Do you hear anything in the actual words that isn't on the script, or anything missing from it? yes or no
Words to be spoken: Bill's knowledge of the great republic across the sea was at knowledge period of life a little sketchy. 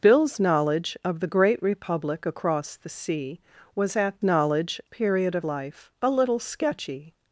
no